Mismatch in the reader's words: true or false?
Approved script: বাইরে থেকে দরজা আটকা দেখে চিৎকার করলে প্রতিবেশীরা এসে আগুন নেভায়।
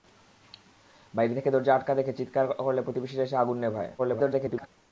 true